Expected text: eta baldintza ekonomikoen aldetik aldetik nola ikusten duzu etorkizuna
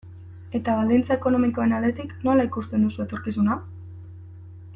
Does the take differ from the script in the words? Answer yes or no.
yes